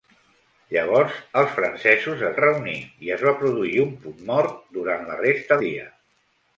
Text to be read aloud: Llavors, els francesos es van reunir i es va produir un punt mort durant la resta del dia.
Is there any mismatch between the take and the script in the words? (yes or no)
yes